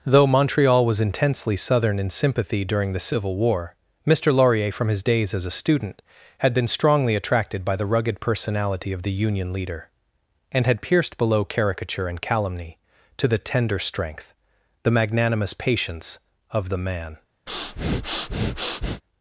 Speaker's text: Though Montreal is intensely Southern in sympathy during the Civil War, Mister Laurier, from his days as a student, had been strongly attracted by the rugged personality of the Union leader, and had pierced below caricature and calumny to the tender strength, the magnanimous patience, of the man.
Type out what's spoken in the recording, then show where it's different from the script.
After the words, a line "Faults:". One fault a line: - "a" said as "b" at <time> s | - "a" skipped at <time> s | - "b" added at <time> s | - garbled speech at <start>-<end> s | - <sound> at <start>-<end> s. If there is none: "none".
Though Montreal was intensely Southern in sympathy during the Civil War, Mister Laurier, from his days as a student, had been strongly attracted by the rugged personality of the Union leader, and had pierced below caricature and calumny to the tender strength, the magnanimous patience, of the man.
Faults:
- "is" said as "was" at 0.8 s
- breath at 17.5-19.0 s